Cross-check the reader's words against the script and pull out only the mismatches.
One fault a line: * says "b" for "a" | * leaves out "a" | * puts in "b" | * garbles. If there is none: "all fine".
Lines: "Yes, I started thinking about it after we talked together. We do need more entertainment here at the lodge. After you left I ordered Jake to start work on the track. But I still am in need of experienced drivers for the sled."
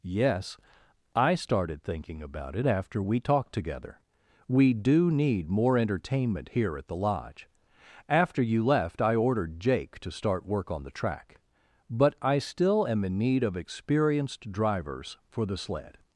all fine